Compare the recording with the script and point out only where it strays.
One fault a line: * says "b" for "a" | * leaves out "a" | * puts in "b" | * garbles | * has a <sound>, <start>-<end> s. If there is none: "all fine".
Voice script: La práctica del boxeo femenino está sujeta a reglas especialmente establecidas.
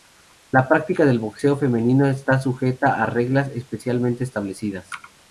all fine